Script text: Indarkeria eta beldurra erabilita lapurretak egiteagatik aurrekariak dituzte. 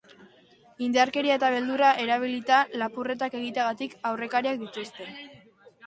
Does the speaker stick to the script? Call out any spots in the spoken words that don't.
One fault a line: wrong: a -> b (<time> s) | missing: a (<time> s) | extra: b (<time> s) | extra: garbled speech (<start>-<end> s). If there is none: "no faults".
no faults